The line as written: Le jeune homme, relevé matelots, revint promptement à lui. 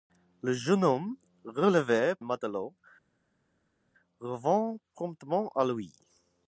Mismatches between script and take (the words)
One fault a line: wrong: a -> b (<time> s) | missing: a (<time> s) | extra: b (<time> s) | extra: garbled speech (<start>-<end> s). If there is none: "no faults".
no faults